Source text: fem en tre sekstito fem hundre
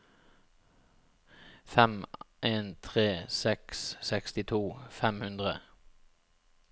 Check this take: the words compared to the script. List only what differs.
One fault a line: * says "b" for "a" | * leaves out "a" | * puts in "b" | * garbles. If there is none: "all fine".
* puts in "seks"